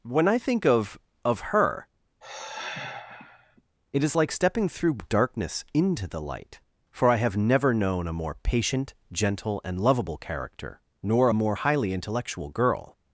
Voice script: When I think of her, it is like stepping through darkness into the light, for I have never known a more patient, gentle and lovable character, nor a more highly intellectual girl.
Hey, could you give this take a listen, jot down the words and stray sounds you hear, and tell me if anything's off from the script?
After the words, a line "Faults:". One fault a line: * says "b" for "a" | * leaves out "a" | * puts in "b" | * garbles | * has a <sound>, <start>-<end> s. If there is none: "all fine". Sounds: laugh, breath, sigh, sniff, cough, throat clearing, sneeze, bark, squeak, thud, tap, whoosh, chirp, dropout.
When I think of of her, it is like stepping through darkness into the light, for I have never known a more patient, gentle and lovable character, nor a more highly intellectual girl.
Faults:
* puts in "of"
* has a sigh, 2.2-3.6 s